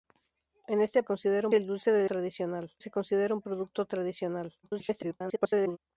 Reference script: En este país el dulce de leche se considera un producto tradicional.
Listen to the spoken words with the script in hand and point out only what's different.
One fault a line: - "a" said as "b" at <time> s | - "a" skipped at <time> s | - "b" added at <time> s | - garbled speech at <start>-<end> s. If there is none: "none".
- "país" said as "considera" at 1.0 s
- "leche" said as "tradicional" at 2.0 s
- garbled speech at 4.6-5.8 s